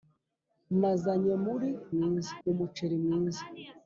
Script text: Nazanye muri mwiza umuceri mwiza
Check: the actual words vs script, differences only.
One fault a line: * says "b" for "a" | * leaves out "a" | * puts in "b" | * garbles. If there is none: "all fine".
all fine